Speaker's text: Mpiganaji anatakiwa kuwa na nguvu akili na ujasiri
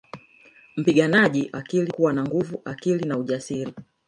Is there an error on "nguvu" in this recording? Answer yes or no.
no